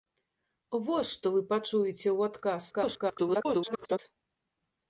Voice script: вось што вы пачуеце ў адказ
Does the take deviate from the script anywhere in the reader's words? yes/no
yes